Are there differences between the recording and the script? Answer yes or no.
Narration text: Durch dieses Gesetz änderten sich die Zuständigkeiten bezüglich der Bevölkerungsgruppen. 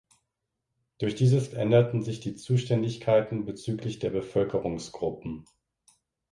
yes